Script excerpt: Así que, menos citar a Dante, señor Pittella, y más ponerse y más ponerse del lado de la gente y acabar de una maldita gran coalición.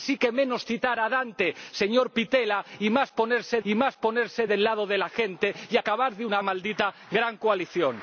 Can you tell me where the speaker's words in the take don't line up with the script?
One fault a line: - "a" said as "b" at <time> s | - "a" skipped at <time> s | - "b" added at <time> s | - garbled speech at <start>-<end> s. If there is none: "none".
none